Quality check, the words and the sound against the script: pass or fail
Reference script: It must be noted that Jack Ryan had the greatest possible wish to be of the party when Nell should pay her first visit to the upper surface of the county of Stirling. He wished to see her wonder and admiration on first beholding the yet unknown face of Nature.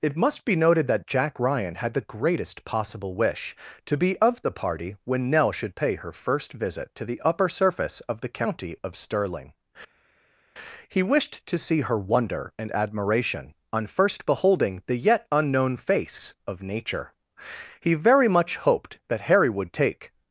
fail